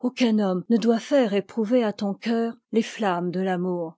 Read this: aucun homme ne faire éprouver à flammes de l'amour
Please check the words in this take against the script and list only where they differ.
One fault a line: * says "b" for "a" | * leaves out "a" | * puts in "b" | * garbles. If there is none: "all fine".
* puts in "doit"
* puts in "ton cœur les"